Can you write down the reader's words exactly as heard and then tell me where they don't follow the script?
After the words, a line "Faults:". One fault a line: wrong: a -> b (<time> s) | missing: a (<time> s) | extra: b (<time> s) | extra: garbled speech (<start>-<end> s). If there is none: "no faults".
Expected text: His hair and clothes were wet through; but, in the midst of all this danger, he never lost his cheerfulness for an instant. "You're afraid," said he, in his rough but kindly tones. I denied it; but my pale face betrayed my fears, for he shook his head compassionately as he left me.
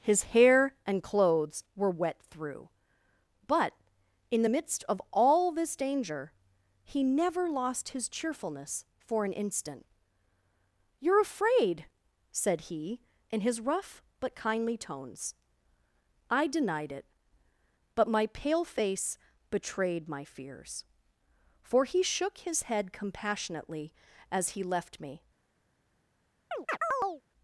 His hair and clothes were wet through; but, in the midst of all this danger, he never lost his cheerfulness for an instant. "You're afraid," said he, in his rough but kindly tones. I denied it; but my pale face betrayed my fears, for he shook his head compassionately as he left me.
Faults:
no faults